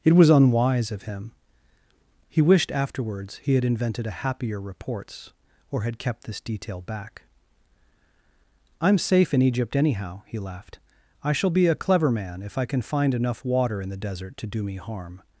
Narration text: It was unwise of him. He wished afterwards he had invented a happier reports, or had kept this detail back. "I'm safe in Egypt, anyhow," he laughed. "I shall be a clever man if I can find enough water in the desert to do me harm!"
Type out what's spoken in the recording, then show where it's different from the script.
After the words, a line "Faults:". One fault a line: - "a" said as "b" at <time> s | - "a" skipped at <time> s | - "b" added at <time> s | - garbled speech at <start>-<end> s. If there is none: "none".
It was unwise of him. He wished afterwards he had invented a happier reports, or had kept this detail back. "I'm safe in Egypt, anyhow," he laughed. "I shall be a clever man if I can find enough water in the desert to do me harm!"
Faults:
none